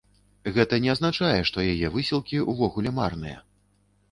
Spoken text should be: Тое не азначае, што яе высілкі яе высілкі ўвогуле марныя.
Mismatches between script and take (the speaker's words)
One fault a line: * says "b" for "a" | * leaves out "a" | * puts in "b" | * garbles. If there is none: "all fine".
* says "Гэта" for "Тое"
* leaves out "яе высілкі"